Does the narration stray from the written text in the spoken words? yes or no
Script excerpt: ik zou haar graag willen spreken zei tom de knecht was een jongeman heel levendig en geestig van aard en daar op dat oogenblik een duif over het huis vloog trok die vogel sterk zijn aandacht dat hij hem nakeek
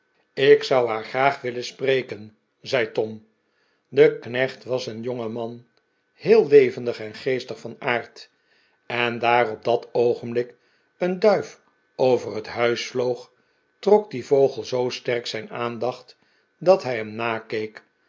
yes